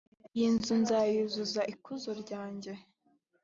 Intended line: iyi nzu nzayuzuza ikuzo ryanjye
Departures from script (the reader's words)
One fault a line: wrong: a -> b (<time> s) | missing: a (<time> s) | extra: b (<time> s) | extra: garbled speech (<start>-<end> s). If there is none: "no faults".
no faults